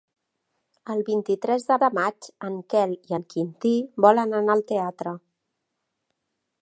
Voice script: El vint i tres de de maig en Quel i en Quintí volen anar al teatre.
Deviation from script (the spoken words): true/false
false